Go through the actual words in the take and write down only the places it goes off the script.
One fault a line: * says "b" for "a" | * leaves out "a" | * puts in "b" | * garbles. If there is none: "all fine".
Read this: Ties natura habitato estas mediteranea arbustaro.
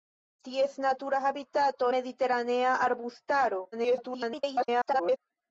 * leaves out "estas"
* garbles